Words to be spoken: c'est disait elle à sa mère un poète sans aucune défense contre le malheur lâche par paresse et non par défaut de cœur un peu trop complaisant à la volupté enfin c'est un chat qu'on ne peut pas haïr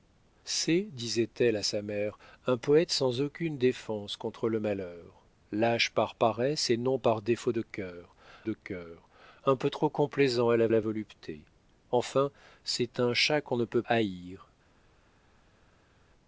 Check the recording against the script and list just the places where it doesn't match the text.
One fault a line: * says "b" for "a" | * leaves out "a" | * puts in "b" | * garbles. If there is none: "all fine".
* puts in "de cœur"
* puts in "la"
* leaves out "pas"